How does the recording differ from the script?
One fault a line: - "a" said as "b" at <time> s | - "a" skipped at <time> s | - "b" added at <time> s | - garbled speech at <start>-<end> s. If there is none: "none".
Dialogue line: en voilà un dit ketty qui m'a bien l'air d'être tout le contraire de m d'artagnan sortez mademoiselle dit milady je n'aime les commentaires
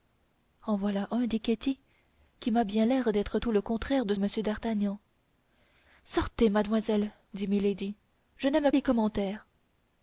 none